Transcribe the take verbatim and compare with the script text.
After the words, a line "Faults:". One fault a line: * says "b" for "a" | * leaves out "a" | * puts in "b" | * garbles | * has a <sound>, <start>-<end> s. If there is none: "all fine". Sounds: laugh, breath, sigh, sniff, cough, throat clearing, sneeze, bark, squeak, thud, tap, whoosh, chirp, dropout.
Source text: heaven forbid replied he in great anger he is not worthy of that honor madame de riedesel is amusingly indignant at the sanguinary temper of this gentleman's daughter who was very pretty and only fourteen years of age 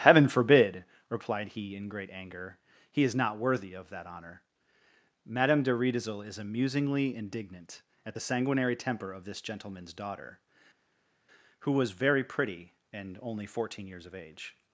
heaven forbid replied he in great anger he is not worthy of that honor madame de riedesel is amusingly indignant at the sanguinary temper of this gentleman's daughter who was very pretty and only fourteen years of age
Faults:
all fine